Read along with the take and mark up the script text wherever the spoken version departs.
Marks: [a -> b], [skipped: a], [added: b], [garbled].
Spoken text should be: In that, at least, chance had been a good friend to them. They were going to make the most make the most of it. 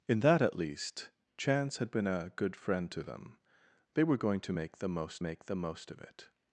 In that, at least, chance had been a good friend to them. They were going to make the most make the most of it.